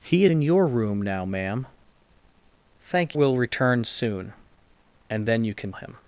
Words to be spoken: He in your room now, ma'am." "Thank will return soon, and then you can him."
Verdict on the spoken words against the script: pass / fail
pass